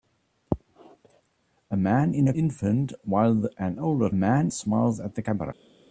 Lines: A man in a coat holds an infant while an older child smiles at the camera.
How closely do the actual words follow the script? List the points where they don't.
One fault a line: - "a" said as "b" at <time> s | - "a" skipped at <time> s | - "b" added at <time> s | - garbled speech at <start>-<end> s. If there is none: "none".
- "coat holds an" skipped at 2.3 s
- "child" said as "man" at 4.1 s